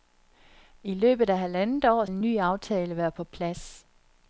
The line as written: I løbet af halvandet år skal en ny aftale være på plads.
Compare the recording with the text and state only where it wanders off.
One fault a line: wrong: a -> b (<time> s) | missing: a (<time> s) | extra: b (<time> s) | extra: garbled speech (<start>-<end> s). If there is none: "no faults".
missing: skal (2.0 s)